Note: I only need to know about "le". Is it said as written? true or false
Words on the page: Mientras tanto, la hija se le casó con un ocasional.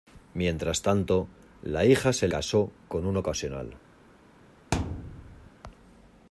false